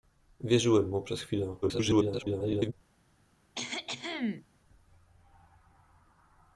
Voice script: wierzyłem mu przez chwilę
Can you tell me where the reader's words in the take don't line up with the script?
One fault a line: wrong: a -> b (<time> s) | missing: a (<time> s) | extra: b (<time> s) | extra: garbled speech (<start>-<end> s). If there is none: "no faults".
extra: garbled speech (1.6-2.7 s)